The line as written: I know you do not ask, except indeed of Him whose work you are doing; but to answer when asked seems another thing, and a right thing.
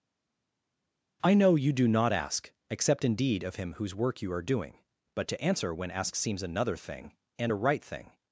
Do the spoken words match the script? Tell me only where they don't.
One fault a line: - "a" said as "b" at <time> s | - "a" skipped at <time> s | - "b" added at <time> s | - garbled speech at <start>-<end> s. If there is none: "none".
none